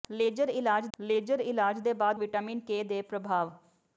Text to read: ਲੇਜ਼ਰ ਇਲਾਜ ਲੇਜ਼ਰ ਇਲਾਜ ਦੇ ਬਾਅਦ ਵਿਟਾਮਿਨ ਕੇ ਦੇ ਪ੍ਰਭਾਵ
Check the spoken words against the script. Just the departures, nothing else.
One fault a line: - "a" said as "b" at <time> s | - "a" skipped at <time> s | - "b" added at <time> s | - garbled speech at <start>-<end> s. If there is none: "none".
none